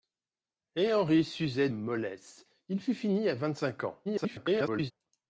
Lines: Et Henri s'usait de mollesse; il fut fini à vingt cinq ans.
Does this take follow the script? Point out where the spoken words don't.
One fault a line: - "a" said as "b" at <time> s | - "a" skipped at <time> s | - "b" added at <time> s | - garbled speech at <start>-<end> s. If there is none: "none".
- "de" skipped at 1.7 s
- garbled speech at 4.0-4.9 s